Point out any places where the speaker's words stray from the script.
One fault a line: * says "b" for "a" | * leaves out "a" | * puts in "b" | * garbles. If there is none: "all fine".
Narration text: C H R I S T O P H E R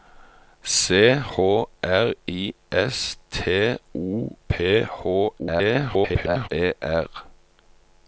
* garbles